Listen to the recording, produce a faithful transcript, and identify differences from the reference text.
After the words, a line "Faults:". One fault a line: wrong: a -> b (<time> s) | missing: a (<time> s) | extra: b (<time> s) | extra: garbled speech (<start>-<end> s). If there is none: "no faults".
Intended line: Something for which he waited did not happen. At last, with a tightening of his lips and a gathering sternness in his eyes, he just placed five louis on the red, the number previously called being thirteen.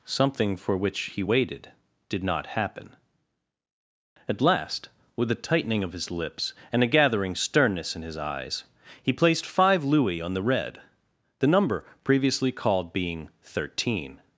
Something for which he waited did not happen. At last, with a tightening of his lips and a gathering sternness in his eyes, he placed five louis on the red, the number previously called being thirteen.
Faults:
missing: just (9.1 s)